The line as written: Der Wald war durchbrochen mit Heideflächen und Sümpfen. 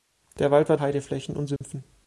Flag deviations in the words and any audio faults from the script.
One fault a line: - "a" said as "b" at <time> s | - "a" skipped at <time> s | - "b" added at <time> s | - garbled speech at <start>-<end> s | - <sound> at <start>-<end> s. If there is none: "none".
- "durchbrochen mit" skipped at 0.8 s
- dropout at 1.6-1.6 s